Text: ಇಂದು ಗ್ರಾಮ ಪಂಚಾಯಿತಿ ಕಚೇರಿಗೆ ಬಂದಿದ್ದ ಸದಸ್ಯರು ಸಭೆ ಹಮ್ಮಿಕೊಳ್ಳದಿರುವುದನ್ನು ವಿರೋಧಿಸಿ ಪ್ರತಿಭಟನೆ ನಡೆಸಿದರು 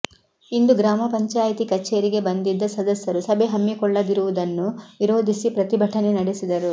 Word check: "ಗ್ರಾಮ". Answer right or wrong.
right